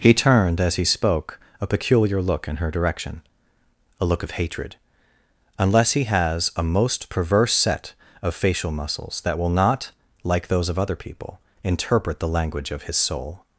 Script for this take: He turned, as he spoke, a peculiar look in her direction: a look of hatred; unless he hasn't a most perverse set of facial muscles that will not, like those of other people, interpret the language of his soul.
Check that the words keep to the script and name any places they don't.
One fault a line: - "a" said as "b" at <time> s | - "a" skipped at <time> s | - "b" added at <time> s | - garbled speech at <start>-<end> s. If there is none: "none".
- "hasn't" said as "has" at 6.0 s